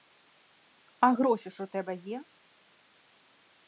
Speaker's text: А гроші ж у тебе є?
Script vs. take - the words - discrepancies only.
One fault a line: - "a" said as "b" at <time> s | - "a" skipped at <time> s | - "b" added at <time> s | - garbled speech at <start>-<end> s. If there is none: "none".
none